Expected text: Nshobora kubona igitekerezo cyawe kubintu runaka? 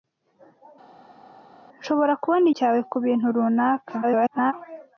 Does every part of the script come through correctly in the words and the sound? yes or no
no